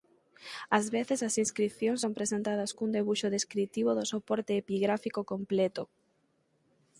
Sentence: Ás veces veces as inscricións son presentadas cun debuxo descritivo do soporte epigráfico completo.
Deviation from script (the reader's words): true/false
true